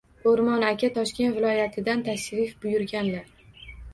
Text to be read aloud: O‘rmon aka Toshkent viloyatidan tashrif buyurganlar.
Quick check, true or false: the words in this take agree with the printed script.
true